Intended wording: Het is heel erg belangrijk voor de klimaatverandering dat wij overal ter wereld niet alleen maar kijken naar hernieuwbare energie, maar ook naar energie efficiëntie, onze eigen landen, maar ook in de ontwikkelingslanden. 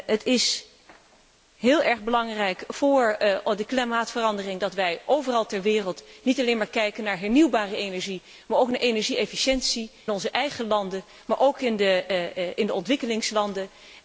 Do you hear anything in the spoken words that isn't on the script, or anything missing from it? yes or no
no